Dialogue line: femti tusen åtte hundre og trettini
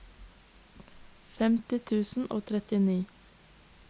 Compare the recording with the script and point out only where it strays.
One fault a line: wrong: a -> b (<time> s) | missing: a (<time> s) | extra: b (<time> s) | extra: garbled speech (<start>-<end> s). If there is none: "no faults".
missing: åtte hundre (2.3 s)